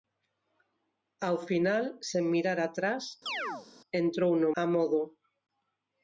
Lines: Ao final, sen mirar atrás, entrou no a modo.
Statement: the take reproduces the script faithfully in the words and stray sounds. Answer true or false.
false